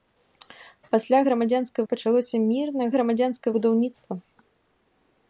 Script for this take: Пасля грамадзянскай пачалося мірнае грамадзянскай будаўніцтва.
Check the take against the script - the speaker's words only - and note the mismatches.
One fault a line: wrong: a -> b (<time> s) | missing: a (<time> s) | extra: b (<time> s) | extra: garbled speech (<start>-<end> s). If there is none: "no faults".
no faults